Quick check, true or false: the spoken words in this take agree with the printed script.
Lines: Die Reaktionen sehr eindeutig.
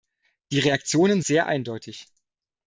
true